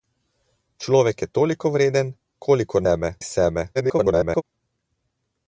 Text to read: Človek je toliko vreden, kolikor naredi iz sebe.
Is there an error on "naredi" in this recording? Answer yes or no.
yes